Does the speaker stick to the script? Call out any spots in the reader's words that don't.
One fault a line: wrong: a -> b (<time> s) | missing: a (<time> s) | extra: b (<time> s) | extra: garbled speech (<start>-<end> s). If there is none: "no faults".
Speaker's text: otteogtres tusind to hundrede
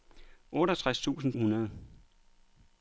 missing: to (1.3 s)